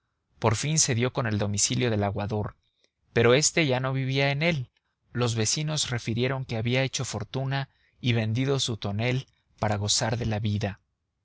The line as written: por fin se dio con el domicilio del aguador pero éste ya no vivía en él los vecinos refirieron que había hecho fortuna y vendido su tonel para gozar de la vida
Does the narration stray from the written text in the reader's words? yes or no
no